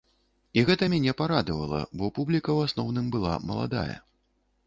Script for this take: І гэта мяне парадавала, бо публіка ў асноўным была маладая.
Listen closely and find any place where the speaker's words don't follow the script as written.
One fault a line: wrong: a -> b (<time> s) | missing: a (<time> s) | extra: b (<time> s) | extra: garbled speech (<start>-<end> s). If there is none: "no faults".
no faults